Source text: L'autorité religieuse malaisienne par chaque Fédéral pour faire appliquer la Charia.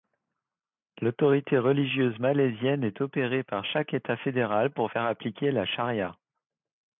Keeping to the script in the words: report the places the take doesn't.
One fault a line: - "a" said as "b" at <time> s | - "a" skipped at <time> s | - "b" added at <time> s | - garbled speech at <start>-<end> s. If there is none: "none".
- "est opérée" added at 2.8 s
- "État" added at 3.9 s